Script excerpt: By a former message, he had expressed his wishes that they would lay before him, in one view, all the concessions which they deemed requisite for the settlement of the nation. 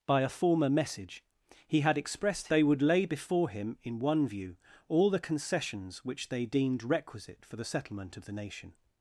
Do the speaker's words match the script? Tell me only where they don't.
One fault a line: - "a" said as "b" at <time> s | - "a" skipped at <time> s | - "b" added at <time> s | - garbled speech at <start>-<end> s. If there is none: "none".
- "his wishes that" skipped at 2.5 s